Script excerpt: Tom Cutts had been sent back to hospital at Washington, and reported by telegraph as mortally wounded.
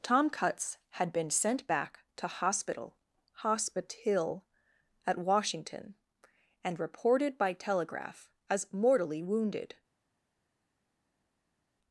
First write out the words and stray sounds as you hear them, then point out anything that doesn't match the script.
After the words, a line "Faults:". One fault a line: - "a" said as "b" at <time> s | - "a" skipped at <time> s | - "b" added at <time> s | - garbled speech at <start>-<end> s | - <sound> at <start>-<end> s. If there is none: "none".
Tom Cutts had been sent back to hospital hospital at Washington, and reported by telegraph as mortally wounded.
Faults:
- "hospital" added at 3.3 s